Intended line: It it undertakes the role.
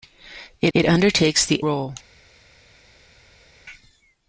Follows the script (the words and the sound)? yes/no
yes